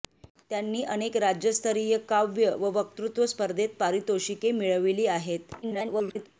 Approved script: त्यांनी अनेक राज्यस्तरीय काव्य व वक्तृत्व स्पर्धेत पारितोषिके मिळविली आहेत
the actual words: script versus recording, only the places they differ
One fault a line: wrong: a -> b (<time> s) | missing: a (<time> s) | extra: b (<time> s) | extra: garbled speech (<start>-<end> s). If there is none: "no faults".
extra: garbled speech (5.6-6.3 s)